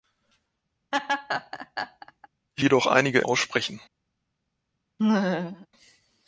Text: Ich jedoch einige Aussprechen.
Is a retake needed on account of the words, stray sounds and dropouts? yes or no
yes